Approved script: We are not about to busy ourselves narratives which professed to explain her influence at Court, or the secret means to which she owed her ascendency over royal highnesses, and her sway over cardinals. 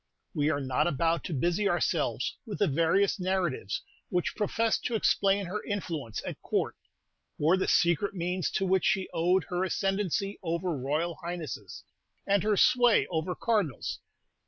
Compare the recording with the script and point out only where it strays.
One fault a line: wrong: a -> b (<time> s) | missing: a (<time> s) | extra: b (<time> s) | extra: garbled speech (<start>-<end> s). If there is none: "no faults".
extra: with the various (2.4 s)